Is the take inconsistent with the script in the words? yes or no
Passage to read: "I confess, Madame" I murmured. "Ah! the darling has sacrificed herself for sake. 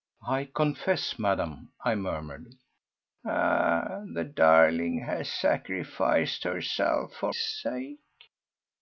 no